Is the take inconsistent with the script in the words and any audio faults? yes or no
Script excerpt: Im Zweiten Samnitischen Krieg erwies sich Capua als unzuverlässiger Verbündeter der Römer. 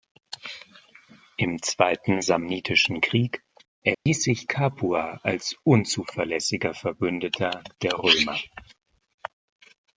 yes